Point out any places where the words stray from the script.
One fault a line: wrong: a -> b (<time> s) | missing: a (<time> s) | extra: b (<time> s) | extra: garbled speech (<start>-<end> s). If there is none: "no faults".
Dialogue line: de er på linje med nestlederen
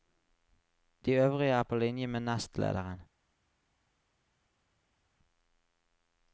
extra: øvrige (1.1 s)